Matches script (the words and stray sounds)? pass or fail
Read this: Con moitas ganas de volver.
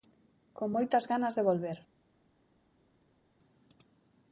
pass